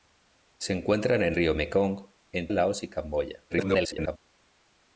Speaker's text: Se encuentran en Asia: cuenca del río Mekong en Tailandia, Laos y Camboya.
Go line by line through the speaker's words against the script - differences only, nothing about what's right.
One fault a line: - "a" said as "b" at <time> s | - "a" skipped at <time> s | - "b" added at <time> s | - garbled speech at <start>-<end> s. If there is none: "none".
- "Asia cuenca del" skipped at 1.4 s
- "Tailandia" skipped at 2.5 s
- garbled speech at 3.5-4.2 s